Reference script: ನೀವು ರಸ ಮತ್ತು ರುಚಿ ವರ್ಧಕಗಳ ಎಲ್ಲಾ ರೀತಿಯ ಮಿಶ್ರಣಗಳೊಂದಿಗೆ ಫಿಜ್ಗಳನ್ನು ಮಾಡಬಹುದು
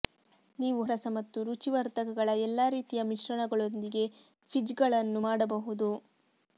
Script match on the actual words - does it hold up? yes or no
yes